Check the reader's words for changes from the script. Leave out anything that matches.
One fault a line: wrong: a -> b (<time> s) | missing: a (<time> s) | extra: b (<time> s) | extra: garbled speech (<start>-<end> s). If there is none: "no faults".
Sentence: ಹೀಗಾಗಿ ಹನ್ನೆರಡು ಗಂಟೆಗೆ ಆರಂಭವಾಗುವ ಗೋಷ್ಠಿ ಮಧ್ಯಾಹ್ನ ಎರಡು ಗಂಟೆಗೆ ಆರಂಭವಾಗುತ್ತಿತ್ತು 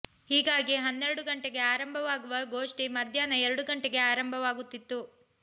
no faults